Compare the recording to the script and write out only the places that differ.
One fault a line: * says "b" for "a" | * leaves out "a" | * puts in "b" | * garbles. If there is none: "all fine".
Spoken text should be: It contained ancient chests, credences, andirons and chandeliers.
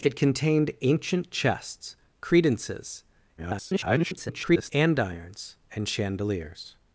* garbles